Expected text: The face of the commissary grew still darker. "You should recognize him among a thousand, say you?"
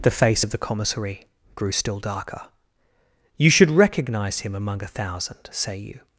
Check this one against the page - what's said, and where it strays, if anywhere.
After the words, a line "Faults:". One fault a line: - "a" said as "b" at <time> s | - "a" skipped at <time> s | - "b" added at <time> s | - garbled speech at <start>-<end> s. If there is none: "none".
The face of the commissary grew still darker. "You should recognize him among a thousand, say you?"
Faults:
none